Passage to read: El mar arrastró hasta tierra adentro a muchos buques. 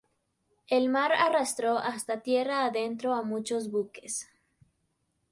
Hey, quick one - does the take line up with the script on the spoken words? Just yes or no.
yes